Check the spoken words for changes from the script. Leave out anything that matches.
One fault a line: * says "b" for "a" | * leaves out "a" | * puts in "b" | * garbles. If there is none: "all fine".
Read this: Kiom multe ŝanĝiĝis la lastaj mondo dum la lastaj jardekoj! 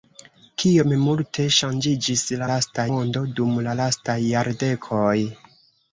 all fine